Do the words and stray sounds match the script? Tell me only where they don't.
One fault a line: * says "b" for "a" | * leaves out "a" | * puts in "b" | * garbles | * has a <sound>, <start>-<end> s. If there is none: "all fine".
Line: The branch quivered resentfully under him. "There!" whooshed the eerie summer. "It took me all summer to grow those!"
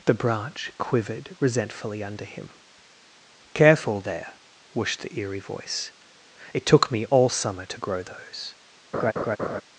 * puts in "Careful"
* says "voice" for "summer"
* has a laugh, 8.9-9.6 s